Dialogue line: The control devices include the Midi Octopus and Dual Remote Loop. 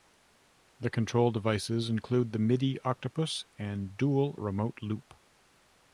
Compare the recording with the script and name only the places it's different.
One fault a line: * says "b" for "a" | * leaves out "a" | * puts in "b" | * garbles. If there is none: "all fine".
all fine